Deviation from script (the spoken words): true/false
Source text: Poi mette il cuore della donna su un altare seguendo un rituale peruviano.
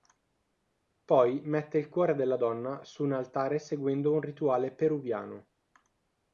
false